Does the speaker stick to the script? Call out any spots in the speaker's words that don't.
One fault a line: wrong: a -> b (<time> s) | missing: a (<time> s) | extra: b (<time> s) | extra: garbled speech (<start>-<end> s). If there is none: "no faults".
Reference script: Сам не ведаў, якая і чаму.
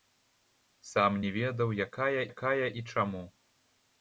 extra: якая (2.3 s)